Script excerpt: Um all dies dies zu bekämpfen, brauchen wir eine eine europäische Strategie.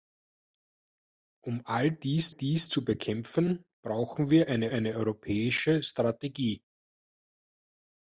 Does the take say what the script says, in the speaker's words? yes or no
yes